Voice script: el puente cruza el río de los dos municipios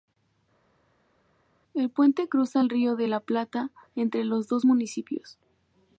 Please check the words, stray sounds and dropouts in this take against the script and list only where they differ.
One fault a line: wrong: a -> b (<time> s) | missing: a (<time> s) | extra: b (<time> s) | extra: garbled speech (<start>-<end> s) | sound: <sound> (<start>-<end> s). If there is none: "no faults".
extra: la plata entre (3.0 s)